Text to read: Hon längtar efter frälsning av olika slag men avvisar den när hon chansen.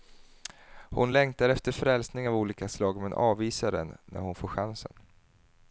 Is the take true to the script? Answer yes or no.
no